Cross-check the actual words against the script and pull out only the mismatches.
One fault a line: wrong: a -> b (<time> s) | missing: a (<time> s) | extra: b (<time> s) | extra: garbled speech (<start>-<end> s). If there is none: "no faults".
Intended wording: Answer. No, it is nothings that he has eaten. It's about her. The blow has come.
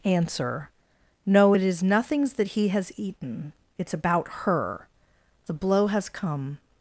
no faults